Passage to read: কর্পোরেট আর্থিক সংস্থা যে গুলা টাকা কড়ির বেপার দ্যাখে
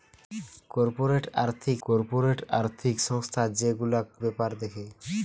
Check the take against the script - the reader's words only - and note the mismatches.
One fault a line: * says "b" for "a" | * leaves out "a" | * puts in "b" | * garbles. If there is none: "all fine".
* puts in "কর্পোরেট আর্থিক"
* leaves out "টাকা কড়ির"